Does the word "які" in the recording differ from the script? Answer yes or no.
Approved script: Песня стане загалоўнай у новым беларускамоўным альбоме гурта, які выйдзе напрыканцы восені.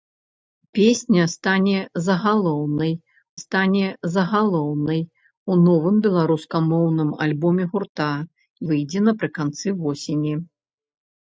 yes